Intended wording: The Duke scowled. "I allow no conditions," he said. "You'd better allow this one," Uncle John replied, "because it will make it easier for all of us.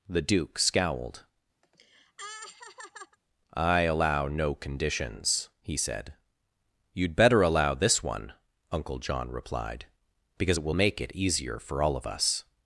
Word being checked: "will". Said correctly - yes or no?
yes